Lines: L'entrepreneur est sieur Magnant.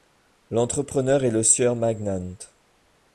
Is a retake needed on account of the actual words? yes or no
yes